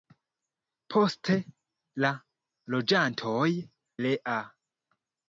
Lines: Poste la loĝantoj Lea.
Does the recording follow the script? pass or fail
pass